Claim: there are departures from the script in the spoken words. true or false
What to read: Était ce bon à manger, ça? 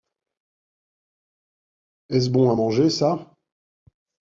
true